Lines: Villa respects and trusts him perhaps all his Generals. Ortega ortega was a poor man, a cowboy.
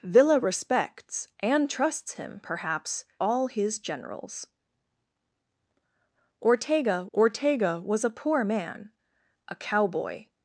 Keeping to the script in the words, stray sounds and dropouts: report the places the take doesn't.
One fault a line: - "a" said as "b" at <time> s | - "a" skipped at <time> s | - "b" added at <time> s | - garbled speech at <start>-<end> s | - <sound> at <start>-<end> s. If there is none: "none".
none